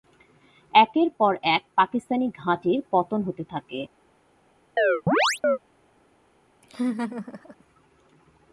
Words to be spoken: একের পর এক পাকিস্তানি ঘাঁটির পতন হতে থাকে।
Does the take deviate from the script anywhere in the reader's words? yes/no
no